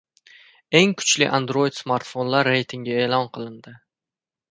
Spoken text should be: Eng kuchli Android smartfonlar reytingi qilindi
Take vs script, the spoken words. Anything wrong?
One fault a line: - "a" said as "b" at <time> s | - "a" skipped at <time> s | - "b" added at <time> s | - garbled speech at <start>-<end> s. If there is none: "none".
- "e'lon" added at 3.1 s